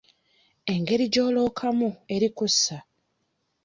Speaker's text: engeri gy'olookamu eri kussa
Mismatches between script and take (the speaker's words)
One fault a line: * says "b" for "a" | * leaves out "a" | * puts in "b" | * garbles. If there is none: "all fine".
all fine